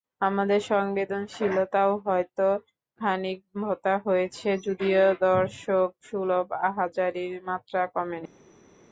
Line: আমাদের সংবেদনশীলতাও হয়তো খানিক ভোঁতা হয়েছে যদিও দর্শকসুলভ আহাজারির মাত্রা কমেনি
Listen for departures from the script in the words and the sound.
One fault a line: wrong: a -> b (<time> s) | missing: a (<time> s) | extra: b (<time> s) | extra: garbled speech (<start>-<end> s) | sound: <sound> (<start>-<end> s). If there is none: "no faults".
no faults